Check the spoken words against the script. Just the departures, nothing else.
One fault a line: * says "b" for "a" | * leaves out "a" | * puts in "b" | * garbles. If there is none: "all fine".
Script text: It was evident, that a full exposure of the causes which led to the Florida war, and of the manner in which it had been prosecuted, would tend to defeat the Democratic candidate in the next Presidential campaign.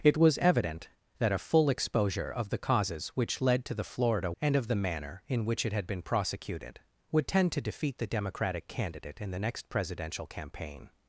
* leaves out "war"